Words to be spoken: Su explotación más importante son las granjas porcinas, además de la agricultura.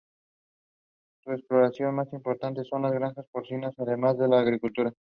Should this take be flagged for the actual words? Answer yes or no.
no